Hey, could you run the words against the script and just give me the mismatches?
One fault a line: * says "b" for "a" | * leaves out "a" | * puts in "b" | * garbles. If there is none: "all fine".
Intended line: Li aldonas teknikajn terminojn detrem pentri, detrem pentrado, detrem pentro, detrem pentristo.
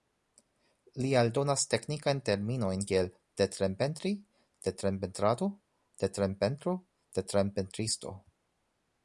* puts in "kiel"